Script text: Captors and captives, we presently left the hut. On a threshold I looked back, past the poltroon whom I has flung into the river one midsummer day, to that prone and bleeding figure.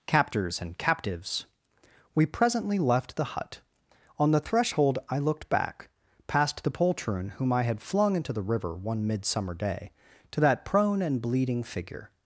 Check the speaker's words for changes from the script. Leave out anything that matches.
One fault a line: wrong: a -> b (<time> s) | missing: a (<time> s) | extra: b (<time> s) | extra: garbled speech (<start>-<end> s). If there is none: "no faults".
wrong: a -> the (4.3 s)
wrong: has -> had (7.6 s)